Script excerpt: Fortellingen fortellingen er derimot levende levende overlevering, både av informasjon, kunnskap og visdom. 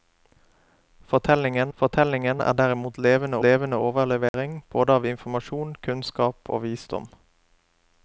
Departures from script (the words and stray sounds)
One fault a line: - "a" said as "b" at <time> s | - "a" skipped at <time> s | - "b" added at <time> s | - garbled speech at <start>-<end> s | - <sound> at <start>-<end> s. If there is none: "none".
- dropout at 4.3-4.3 s